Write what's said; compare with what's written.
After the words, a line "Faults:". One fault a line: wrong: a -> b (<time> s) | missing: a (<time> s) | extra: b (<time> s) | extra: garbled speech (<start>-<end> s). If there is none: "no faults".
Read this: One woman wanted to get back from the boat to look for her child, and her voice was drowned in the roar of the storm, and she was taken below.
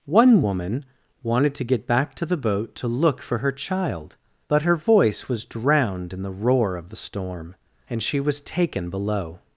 One woman wanted to get back to the boat to look for her child, but her voice was drowned in the roar of the storm, and she was taken below.
Faults:
wrong: from -> to (2.2 s)
wrong: and -> but (4.5 s)